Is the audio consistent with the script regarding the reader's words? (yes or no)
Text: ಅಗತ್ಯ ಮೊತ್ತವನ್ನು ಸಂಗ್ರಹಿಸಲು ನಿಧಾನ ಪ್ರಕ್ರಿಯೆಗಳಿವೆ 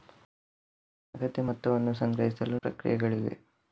no